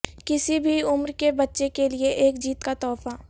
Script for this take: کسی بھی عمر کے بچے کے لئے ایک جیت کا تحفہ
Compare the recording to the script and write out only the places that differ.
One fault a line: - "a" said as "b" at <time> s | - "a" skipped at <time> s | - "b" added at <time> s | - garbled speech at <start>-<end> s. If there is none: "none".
none